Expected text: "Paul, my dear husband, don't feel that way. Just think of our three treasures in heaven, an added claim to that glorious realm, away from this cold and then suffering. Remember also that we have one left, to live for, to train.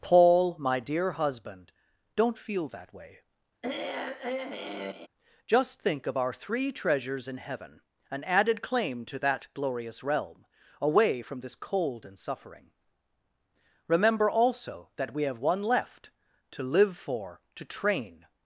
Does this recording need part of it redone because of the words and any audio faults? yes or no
yes